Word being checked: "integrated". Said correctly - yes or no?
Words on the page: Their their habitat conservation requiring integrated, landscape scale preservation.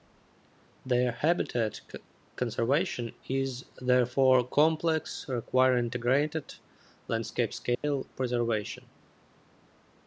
yes